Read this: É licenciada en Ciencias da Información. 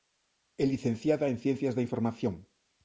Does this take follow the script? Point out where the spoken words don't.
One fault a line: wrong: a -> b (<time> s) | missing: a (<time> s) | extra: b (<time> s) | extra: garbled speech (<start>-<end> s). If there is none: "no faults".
no faults